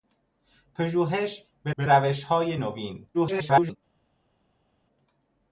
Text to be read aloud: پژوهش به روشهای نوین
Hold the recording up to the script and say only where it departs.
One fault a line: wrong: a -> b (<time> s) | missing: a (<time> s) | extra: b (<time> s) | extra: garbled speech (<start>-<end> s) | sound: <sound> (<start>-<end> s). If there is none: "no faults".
extra: به (1.8 s)
extra: garbled speech (3.1-3.8 s)